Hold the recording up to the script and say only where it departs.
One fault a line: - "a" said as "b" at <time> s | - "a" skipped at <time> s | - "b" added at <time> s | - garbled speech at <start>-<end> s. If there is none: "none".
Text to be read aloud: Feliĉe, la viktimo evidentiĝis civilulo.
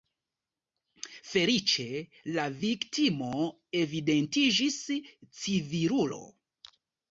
none